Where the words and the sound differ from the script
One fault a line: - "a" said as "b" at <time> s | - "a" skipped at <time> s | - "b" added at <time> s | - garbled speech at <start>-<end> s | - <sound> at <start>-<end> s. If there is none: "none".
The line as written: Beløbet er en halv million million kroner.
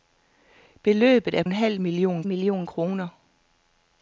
none